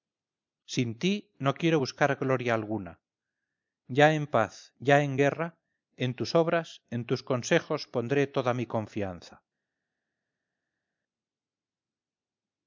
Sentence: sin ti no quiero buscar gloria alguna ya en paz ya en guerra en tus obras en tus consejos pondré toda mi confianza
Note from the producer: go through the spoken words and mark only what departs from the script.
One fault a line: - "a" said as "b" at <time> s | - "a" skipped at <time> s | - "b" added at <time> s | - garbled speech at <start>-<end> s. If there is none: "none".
none